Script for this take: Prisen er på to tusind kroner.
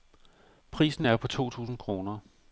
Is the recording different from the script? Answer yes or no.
no